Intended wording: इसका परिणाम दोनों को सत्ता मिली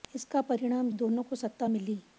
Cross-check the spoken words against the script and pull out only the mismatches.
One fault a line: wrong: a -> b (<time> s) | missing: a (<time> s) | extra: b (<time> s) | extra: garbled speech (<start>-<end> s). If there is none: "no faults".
no faults